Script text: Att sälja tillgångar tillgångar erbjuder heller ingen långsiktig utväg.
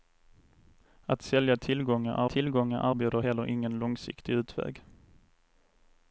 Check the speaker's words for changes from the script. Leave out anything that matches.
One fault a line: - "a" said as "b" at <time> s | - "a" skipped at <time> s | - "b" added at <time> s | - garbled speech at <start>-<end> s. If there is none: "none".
none